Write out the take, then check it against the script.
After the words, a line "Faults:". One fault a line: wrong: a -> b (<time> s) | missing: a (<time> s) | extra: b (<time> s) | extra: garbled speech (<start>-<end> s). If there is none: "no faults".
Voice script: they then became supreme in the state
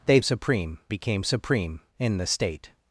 they supreme became supreme in the state
Faults:
wrong: then -> supreme (0.2 s)